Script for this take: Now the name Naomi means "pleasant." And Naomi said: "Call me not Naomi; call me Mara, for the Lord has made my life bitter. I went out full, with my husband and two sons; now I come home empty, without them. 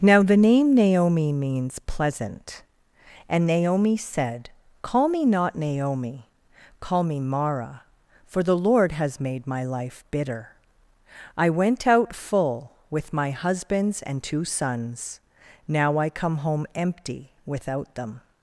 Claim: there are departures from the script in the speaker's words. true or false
true